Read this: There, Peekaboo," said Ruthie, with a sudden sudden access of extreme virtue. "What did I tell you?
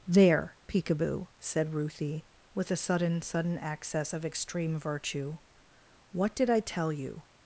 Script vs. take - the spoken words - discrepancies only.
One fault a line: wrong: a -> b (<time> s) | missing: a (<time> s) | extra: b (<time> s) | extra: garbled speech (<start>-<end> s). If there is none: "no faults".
no faults